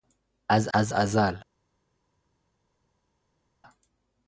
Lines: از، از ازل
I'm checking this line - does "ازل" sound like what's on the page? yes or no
yes